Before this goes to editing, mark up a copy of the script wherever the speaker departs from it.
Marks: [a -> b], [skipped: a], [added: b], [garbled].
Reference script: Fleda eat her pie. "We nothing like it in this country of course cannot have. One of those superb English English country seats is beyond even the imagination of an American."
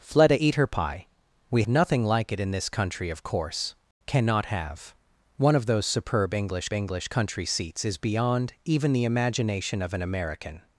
Fleda eat her pie. "We nothing like it in this country of course cannot have. One of those superb English English country seats is beyond even the imagination of an American."